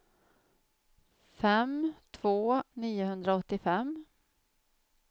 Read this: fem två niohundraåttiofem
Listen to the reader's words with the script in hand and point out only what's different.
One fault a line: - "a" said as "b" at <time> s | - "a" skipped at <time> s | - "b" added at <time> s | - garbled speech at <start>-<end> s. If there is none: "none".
none